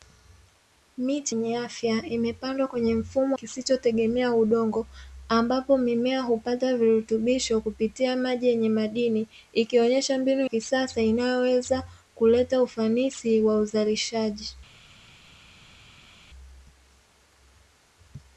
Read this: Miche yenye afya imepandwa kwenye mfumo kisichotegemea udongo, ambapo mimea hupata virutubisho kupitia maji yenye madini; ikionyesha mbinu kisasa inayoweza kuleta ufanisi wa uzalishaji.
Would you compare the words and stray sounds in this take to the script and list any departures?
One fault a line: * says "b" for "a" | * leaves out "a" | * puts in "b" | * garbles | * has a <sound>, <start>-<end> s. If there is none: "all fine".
all fine